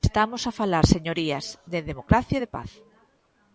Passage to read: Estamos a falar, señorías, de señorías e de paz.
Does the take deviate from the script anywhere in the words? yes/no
yes